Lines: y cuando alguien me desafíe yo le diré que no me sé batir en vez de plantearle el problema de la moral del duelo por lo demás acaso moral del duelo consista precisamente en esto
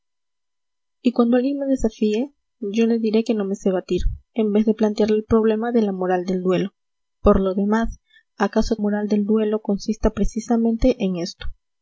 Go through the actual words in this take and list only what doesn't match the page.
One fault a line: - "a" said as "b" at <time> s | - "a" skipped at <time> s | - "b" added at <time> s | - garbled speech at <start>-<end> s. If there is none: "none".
none